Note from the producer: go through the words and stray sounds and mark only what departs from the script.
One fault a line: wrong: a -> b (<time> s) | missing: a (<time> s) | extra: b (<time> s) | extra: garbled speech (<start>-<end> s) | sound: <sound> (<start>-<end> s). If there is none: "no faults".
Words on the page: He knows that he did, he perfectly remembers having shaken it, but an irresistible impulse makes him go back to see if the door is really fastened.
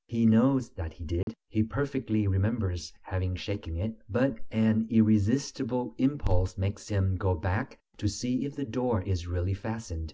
sound: dropout (1.2-1.3 s)